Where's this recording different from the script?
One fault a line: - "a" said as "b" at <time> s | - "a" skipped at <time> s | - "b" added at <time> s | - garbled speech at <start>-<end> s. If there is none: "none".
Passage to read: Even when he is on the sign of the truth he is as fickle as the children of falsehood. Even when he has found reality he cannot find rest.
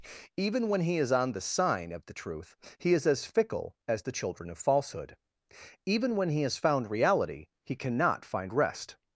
none